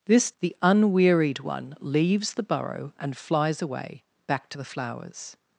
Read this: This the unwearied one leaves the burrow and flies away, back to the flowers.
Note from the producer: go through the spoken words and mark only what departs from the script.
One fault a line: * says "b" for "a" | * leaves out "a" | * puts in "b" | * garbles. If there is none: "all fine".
all fine